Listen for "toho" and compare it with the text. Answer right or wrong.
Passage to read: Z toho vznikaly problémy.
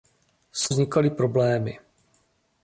wrong